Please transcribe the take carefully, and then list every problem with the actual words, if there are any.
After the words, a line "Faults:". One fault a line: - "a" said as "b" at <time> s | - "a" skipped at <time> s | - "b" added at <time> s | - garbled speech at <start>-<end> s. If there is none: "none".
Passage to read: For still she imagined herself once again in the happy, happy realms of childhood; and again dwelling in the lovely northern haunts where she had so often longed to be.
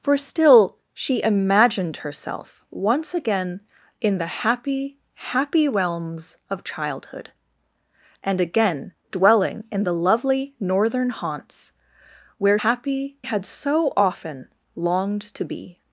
For still she imagined herself once again in the happy, happy realms of childhood; and again dwelling in the lovely northern haunts where happy had so often longed to be.
Faults:
- "she" said as "happy" at 12.6 s